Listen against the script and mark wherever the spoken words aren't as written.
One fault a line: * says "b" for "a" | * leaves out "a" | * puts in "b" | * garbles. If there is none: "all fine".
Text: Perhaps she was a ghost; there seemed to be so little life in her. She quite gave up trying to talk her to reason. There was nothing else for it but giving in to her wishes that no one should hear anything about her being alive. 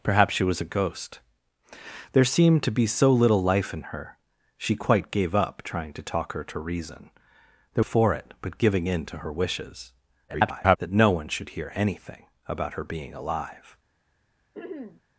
* leaves out "was nothing else"
* garbles